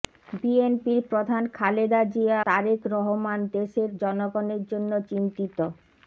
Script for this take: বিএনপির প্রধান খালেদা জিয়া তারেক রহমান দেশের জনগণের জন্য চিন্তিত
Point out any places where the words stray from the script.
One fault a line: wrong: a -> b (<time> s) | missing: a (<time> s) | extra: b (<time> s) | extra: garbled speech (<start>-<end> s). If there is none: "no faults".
no faults